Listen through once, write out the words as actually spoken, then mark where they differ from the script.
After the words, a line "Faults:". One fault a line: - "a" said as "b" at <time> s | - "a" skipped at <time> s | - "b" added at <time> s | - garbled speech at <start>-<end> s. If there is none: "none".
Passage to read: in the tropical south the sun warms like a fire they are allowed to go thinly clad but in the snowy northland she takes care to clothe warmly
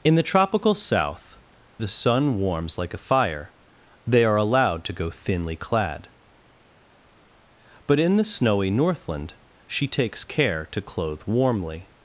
in the tropical south the sun warms like a fire they are allowed to go thinly clad but in the snowy northland she takes care to clothe warmly
Faults:
none